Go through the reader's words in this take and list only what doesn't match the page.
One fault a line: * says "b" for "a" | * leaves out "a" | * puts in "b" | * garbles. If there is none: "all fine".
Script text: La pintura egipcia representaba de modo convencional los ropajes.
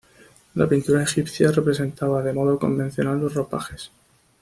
all fine